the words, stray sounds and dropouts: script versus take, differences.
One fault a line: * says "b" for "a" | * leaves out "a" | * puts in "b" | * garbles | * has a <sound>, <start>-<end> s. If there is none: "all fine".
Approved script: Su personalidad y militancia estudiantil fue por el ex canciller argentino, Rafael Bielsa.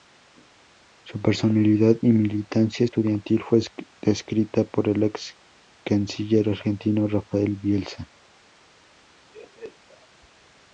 * puts in "descrita"
* has a laugh, 9.3-10.1 s